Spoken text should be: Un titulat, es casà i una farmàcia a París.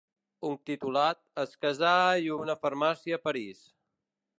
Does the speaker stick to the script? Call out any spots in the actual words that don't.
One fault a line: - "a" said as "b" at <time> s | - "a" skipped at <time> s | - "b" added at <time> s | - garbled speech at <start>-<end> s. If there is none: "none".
none